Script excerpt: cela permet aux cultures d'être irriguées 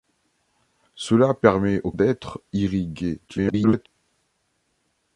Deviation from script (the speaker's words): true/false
true